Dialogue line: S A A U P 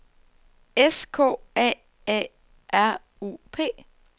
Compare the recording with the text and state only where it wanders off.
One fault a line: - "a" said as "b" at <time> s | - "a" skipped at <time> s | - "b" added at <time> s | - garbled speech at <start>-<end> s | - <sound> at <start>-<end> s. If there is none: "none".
- "K" added at 1.1 s
- "R" added at 2.7 s